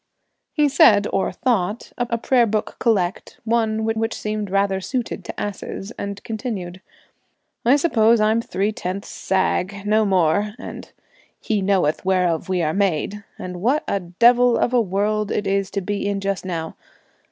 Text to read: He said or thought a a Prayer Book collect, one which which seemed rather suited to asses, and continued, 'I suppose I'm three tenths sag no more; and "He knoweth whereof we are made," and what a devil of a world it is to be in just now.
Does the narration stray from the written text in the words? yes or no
no